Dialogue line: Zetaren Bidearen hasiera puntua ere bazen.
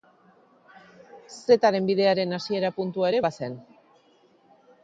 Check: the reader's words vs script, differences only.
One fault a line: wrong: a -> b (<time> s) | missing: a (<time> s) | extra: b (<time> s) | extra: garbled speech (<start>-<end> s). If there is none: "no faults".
no faults